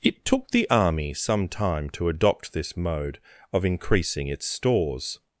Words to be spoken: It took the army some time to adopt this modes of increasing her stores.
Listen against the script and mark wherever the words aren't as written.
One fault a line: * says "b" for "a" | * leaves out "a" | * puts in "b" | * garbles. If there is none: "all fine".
* says "mode" for "modes"
* says "its" for "her"